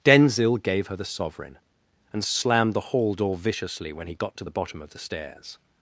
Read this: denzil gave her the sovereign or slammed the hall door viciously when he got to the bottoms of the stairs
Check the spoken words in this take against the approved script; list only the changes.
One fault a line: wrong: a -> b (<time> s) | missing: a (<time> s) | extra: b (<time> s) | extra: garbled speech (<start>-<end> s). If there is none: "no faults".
wrong: or -> and (2.1 s)
wrong: bottoms -> bottom (4.5 s)